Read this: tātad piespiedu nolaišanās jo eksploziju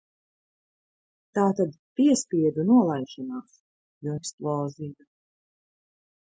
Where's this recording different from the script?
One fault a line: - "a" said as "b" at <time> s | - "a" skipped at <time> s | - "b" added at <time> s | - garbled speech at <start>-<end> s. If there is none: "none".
none